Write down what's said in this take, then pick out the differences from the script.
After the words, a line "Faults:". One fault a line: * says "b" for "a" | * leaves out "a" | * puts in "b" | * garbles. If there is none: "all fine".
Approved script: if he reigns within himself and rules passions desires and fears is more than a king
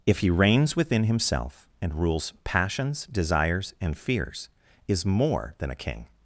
if he reigns within himself and rules passions desires and fears is more than a king
Faults:
all fine